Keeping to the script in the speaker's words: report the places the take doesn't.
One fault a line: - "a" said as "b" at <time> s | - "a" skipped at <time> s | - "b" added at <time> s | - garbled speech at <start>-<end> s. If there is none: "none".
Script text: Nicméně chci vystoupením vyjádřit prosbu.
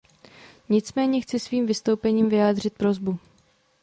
- "svým" added at 1.4 s